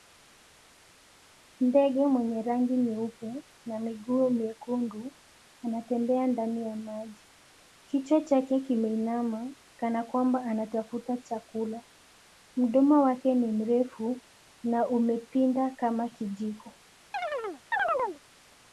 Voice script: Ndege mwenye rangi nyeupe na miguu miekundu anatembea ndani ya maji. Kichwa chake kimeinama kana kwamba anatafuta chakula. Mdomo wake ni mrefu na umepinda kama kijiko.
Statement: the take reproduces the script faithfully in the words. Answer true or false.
true